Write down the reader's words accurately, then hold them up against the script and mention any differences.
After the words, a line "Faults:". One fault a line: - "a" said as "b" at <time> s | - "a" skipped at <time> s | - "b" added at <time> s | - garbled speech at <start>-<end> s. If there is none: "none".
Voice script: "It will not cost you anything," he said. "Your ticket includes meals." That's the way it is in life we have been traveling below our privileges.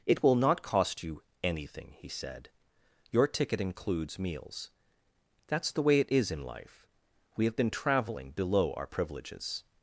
"It will not cost you anything," he said. "Your ticket includes meals." That's the way it is in life we have been traveling below our privileges.
Faults:
none